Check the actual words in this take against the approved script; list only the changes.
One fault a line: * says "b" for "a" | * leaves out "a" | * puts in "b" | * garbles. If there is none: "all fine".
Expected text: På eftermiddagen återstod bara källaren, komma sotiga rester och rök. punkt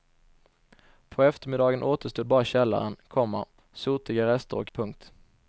* leaves out "rök"